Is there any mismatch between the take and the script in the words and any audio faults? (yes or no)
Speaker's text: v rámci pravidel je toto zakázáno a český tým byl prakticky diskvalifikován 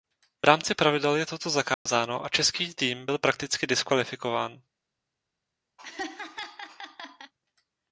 yes